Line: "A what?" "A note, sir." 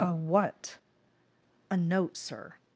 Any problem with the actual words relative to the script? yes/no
no